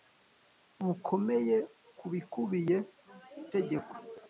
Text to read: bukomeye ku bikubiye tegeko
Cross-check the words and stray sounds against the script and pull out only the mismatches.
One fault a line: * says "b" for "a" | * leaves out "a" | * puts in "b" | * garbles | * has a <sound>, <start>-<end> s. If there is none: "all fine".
all fine